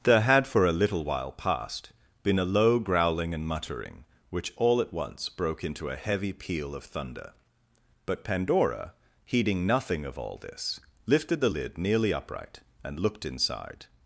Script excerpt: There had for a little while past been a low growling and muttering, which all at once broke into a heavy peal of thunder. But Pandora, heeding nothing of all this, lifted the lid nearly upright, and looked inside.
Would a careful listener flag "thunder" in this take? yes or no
no